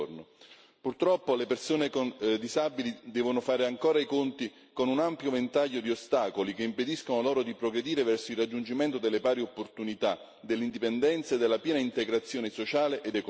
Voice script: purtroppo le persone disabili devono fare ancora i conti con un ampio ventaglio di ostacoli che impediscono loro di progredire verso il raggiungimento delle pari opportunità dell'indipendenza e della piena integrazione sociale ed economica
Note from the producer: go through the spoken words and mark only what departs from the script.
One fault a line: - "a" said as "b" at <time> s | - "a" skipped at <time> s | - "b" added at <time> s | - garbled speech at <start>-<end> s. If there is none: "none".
none